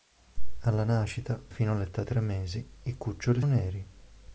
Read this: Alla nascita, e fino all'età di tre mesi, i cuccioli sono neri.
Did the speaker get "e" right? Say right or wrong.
wrong